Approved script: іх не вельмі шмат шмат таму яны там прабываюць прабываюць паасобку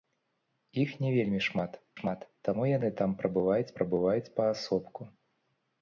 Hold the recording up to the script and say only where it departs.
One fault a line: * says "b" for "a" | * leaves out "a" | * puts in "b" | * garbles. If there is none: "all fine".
all fine